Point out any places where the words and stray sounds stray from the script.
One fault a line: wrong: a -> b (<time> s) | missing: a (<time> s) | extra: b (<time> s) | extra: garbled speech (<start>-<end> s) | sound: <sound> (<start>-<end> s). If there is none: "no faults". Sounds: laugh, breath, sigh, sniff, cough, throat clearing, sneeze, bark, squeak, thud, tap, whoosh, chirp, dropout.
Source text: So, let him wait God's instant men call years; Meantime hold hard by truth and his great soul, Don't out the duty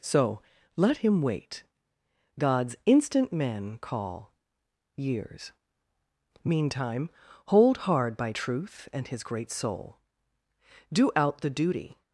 wrong: Don't -> Do (10.9 s)